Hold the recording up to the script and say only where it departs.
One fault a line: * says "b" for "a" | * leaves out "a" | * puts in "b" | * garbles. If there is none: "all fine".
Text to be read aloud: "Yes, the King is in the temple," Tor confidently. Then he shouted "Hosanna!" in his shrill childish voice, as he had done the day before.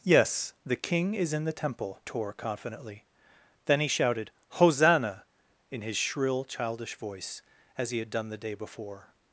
all fine